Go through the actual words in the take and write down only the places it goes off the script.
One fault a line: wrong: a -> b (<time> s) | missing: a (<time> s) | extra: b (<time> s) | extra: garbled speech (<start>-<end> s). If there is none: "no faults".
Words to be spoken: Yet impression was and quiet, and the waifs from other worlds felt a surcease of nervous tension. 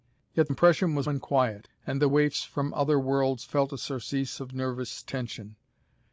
no faults